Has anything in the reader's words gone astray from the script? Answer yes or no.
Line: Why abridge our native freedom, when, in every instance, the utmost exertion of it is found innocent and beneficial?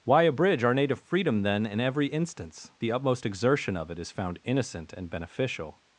yes